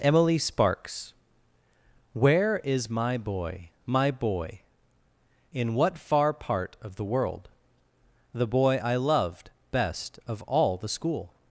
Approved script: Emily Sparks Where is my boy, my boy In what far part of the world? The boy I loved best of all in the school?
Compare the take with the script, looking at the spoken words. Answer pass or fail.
fail